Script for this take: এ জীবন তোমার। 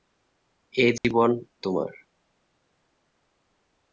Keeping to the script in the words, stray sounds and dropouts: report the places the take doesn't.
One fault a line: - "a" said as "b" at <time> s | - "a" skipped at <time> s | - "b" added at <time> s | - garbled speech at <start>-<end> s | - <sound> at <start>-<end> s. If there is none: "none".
- dropout at 1.0-1.0 s